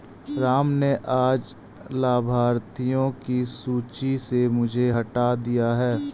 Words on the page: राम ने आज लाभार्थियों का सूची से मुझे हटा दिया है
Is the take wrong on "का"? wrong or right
wrong